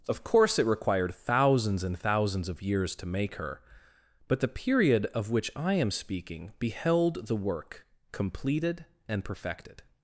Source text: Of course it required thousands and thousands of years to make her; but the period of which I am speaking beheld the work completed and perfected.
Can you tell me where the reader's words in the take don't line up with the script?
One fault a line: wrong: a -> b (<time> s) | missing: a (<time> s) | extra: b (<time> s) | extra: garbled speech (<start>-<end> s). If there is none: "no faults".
no faults